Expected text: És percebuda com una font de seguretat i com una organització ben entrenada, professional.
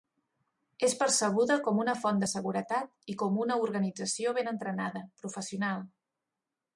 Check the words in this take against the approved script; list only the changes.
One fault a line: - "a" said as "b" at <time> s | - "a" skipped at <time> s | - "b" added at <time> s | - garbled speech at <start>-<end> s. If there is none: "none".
none